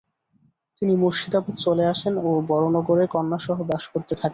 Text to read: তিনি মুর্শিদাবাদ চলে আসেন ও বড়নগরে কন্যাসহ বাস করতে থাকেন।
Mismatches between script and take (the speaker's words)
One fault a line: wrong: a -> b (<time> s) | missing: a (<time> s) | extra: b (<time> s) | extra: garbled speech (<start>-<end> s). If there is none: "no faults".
no faults